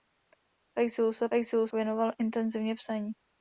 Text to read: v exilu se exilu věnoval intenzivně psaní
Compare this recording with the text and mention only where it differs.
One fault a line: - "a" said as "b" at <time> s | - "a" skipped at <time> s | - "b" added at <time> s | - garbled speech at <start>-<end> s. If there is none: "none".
none